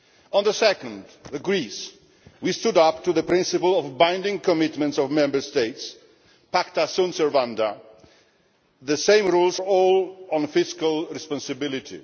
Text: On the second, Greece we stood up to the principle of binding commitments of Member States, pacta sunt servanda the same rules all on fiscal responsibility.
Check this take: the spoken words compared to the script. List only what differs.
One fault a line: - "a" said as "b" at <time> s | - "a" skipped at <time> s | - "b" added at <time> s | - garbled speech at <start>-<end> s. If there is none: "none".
none